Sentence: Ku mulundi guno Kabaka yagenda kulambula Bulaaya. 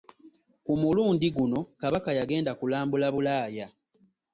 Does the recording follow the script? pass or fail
pass